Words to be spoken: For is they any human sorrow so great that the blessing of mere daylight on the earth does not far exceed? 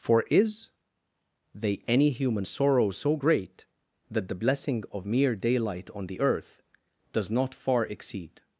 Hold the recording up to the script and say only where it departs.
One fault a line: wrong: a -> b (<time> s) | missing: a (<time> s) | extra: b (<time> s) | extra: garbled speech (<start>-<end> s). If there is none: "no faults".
no faults